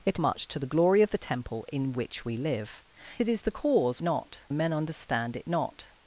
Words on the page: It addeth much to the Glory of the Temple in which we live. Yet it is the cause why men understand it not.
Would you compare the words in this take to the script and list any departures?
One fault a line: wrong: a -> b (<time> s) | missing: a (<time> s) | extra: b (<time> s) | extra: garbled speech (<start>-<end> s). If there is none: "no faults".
missing: addeth (0.2 s)
missing: Yet (2.8 s)
wrong: why -> not (4.0 s)